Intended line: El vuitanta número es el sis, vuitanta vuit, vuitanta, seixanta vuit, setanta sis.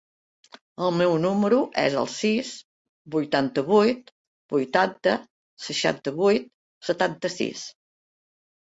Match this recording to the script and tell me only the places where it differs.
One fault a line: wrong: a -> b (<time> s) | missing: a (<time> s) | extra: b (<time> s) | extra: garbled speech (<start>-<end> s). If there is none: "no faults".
wrong: vuitanta -> meu (1.0 s)